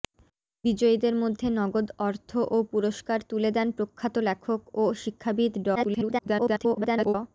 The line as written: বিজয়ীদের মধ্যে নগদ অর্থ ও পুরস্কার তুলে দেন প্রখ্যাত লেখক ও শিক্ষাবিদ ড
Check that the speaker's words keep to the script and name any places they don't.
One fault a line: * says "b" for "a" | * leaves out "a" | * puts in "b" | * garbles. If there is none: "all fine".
* garbles